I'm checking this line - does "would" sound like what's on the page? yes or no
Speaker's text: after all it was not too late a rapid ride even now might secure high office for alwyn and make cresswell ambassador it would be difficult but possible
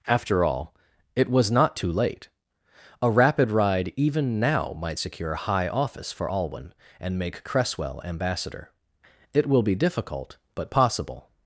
no